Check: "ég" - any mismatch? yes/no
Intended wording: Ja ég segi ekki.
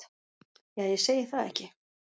no